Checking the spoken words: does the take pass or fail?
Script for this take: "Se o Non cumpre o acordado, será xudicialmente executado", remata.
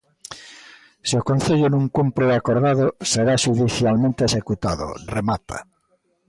fail